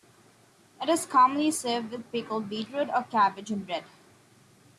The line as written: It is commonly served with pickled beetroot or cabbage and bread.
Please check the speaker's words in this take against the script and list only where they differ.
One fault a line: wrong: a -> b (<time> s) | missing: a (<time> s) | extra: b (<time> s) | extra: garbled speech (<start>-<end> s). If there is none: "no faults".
no faults